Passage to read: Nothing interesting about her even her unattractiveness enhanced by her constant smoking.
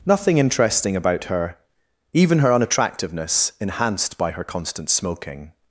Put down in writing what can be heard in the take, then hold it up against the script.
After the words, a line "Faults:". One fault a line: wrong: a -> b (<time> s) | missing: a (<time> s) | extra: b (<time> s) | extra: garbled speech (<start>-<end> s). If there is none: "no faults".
Nothing interesting about her even her unattractiveness enhanced by her constant smoking.
Faults:
no faults